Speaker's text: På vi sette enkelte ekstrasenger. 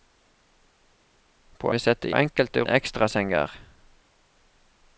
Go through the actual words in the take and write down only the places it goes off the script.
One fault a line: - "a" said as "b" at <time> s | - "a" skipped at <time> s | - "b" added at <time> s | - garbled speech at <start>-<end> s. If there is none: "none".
none